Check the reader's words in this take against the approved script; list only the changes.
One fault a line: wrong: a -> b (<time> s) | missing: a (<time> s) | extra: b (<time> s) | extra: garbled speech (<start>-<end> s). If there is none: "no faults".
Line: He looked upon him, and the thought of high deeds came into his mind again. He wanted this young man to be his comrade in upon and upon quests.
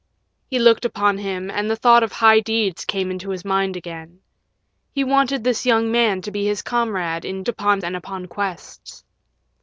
no faults